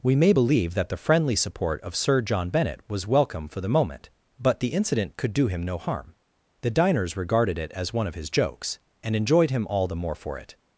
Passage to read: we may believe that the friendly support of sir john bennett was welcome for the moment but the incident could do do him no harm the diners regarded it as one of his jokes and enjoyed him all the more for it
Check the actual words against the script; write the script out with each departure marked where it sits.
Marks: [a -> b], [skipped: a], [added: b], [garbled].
we may believe that the friendly support of sir john bennett was welcome for the moment but the incident could do [skipped: do] him no harm the diners regarded it as one of his jokes and enjoyed him all the more for it